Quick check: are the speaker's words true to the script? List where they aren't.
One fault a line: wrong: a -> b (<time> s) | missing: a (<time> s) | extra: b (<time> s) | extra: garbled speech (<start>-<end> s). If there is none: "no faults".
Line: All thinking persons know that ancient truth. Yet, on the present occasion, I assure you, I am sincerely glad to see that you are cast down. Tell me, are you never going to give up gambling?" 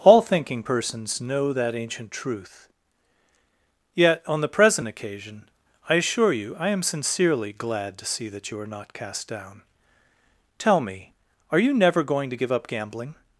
extra: not (8.7 s)